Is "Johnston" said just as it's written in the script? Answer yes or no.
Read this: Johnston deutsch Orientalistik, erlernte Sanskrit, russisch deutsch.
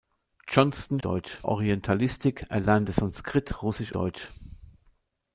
yes